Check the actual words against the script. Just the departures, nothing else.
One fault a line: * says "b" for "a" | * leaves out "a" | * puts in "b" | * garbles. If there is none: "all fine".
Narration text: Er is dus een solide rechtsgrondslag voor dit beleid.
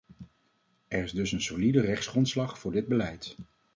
all fine